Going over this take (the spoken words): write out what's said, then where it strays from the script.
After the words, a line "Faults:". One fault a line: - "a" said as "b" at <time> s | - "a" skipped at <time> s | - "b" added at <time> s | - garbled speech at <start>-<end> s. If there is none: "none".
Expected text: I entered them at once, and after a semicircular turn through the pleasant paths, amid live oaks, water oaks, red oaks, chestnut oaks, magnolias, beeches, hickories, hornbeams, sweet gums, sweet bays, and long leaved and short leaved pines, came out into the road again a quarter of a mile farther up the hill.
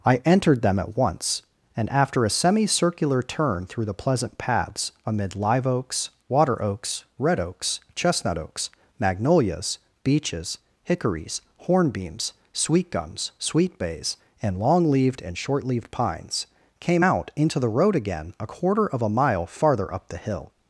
I entered them at once, and after a semicircular turn through the pleasant paths, amid live oaks, water oaks, red oaks, chestnut oaks, magnolias, beeches, hickories, hornbeams, sweet gums, sweet bays, and long leaved and short leaved pines, came out into the road again a quarter of a mile farther up the hill.
Faults:
none